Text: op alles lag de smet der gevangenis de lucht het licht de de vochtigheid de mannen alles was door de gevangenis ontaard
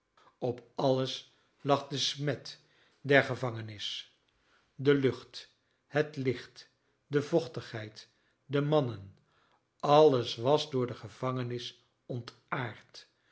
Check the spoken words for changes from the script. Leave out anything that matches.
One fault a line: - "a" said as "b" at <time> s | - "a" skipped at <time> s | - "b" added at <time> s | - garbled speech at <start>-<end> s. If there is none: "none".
- "de" skipped at 7.2 s